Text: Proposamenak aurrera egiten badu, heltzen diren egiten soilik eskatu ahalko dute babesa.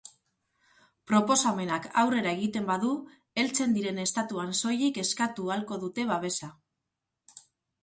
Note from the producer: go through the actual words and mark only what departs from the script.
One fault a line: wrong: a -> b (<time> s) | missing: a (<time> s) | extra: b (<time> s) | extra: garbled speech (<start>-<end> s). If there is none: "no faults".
wrong: egiten -> estatuan (4.0 s)